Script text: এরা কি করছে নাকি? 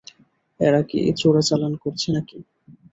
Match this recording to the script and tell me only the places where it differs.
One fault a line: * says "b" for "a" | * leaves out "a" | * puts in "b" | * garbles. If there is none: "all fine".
* puts in "চোরাচালান"